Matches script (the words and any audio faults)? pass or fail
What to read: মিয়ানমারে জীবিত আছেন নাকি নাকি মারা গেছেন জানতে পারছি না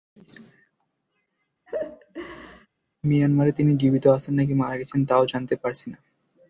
fail